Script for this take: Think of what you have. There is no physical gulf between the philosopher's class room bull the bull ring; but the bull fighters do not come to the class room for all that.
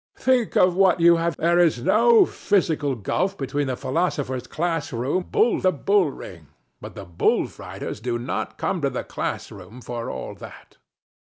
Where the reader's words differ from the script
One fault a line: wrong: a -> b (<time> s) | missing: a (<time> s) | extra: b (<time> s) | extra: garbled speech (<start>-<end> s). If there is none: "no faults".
no faults